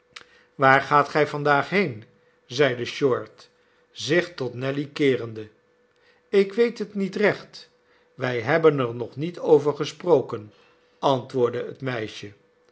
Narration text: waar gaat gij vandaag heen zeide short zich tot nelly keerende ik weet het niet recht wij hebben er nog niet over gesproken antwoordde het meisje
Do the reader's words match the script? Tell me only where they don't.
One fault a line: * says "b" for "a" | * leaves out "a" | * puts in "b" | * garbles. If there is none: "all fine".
all fine